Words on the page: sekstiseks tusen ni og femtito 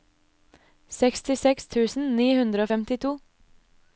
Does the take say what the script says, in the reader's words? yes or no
no